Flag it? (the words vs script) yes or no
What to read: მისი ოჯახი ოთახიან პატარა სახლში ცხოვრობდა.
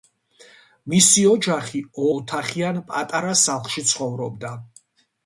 no